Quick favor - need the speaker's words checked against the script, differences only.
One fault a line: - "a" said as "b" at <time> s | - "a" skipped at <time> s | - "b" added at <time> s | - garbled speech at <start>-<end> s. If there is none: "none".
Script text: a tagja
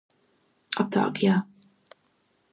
none